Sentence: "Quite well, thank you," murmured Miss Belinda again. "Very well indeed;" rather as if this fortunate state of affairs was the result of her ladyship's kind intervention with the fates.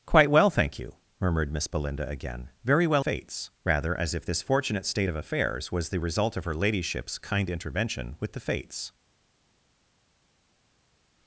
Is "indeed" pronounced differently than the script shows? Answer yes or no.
yes